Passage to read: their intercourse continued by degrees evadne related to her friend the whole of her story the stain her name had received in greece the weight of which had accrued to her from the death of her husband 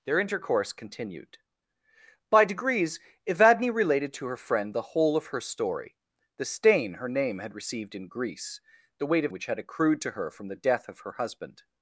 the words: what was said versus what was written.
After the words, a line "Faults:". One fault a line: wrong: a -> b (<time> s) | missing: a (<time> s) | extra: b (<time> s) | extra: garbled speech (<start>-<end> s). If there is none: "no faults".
their intercourse continued by degrees evadne related to her friend the whole of her story the stain her name had received in greece the weight of which had accrued to her from the death of her husband
Faults:
no faults